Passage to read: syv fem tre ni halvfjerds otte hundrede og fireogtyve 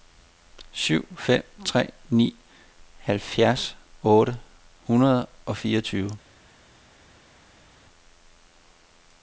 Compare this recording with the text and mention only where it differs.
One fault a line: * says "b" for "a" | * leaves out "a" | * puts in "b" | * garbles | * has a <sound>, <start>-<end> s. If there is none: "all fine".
all fine